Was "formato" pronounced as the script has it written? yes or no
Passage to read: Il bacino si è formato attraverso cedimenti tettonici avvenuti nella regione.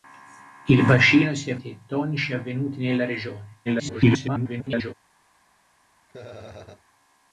no